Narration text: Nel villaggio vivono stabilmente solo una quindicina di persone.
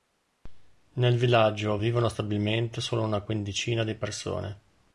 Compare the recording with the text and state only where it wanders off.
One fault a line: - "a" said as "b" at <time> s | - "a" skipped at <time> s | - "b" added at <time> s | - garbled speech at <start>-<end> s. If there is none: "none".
none